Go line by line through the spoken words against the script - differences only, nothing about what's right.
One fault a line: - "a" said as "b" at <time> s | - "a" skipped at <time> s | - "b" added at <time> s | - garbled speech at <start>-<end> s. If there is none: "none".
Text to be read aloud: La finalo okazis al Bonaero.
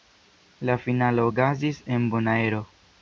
- "al" said as "en" at 2.0 s